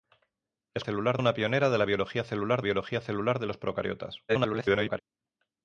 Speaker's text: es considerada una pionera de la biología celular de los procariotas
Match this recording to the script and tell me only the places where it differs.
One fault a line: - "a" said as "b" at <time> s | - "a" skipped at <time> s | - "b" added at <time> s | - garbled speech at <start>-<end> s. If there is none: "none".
- "considerada" said as "celular" at 0.8 s
- "biología celular" added at 2.6 s
- garbled speech at 4.3-5.0 s